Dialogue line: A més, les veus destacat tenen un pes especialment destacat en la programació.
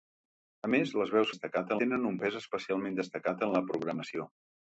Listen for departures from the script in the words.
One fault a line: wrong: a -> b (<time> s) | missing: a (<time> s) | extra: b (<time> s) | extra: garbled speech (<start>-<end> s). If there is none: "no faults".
no faults